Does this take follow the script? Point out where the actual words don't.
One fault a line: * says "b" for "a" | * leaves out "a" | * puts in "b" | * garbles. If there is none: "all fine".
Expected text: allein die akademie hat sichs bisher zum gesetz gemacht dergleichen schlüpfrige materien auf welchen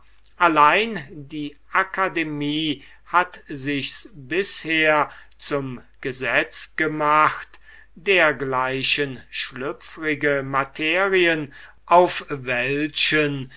all fine